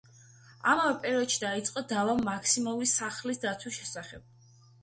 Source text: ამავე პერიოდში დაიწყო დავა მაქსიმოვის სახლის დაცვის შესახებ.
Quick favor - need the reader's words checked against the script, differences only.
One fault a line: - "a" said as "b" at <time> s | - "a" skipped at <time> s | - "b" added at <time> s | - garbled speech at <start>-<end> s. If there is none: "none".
none